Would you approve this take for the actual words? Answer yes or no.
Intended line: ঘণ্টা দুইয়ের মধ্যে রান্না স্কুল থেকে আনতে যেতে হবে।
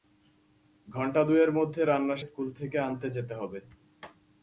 yes